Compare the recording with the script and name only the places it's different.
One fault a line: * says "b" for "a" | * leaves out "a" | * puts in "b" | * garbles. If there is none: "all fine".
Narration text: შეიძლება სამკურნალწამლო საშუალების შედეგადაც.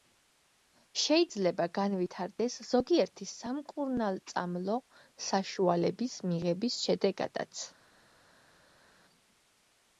* puts in "განვითარდეს ზოგიერთი"
* puts in "მიღების"